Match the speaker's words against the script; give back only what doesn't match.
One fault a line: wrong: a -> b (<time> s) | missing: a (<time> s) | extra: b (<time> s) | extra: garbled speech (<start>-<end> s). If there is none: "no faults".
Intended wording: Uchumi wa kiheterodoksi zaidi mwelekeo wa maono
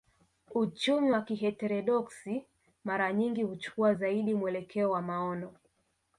extra: mara nyingi huchukua (2.8 s)